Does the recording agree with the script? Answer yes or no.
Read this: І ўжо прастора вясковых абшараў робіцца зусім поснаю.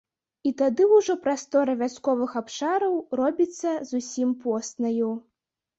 no